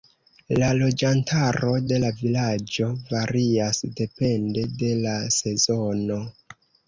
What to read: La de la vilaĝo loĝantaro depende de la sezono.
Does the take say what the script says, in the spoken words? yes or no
no